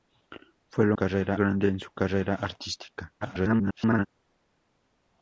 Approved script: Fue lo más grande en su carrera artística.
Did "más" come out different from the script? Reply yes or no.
yes